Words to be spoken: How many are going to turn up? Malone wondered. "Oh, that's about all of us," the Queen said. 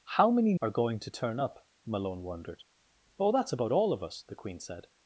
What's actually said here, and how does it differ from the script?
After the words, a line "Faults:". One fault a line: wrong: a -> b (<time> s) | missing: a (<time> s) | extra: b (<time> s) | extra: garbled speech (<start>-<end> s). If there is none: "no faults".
How many are going to turn up? Malone wondered. "Oh, that's about all of us," the Queen said.
Faults:
no faults